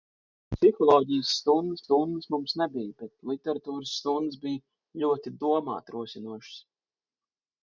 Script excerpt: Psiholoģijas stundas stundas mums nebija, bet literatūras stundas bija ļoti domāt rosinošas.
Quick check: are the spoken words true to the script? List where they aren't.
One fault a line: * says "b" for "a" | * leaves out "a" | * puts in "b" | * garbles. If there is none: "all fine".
all fine